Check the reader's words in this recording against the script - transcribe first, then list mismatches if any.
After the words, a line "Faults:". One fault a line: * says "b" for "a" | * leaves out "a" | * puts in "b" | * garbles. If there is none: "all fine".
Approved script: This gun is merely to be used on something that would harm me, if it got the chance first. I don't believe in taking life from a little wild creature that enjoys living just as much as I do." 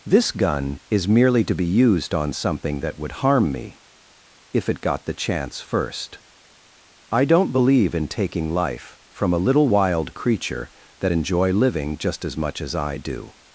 This gun is merely to be used on something that would harm me, if it got the chance first. I don't believe in taking life from a little wild creature that enjoy living just as much as I do."
Faults:
* says "enjoy" for "enjoys"